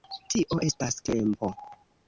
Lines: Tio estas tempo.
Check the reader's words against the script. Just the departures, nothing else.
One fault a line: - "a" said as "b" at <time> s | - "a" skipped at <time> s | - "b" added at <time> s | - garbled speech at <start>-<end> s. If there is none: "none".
none